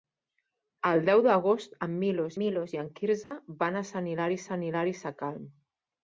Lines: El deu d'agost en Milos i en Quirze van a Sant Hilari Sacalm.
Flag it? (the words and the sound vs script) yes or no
yes